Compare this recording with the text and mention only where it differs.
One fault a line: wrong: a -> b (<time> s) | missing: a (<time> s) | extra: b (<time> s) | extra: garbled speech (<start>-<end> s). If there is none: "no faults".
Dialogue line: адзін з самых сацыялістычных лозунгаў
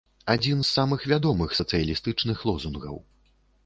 extra: вядомых (1.1 s)